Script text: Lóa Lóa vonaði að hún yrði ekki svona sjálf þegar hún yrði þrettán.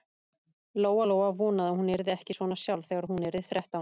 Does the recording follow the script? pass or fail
pass